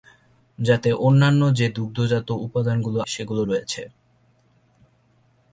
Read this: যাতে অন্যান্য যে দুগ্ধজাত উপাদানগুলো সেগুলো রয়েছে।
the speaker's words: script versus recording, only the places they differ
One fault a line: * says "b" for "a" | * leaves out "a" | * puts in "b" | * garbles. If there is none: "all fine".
all fine